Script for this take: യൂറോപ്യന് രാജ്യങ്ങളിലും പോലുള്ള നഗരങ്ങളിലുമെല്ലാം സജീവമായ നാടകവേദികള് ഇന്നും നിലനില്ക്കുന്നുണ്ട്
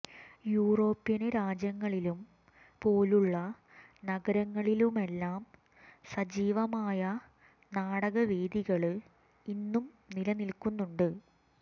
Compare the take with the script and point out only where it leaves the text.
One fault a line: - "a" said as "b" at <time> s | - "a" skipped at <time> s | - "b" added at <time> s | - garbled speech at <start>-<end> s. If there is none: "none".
none